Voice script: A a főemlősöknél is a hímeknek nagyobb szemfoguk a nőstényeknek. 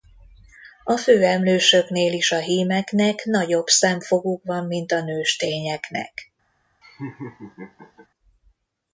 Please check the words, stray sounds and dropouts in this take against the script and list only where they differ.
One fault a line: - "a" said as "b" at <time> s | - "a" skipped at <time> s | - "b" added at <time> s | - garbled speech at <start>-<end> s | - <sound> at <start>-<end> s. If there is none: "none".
- "a" skipped at 1.0 s
- "van mint" added at 4.4 s
- laugh at 6.8-8.1 s